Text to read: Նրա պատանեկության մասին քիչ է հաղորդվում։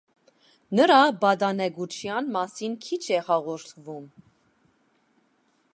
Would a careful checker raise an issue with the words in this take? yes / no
no